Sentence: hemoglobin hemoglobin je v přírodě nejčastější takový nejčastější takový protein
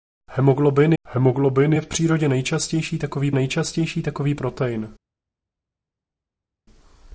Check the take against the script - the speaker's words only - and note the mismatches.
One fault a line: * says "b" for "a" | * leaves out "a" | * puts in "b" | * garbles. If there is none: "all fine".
all fine